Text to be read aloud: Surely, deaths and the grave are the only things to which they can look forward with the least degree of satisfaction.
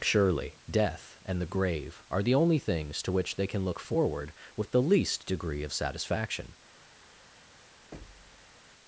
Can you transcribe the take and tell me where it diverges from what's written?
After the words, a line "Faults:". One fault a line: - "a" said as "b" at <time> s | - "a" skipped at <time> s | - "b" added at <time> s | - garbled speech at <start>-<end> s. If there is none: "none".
Surely, death and the grave are the only things to which they can look forward with the least degree of satisfaction.
Faults:
- "deaths" said as "death" at 0.7 s